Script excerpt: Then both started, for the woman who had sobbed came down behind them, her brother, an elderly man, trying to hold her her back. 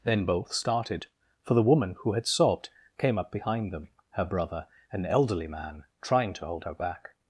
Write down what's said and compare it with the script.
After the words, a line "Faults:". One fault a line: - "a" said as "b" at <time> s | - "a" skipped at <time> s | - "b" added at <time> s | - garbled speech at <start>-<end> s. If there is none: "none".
Then both started, for the woman who had sobbed came up behind them, her brother, an elderly man, trying to hold her back.
Faults:
- "down" said as "up" at 3.2 s
- "her" skipped at 6.7 s